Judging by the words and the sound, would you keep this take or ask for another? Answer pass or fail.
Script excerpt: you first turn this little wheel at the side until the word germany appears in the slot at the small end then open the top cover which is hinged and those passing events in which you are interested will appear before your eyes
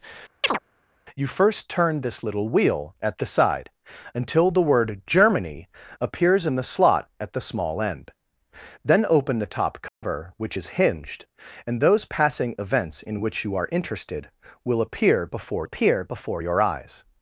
fail